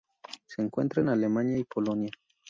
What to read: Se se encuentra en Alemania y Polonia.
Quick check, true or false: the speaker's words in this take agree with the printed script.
false